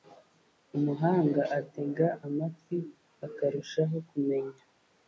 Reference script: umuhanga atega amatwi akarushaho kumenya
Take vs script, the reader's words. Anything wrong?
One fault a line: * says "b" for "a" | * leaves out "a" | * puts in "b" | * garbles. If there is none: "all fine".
all fine